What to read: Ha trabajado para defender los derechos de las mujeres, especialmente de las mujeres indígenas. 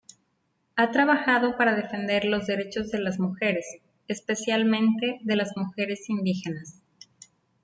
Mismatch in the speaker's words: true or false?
false